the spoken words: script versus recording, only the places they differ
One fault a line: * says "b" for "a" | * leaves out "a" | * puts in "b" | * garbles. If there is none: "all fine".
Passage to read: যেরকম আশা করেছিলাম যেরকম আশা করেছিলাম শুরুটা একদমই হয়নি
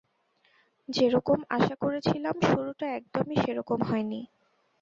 * leaves out "যেরকম আশা করেছিলাম"
* puts in "সেরকম"